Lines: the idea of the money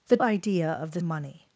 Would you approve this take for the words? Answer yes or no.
yes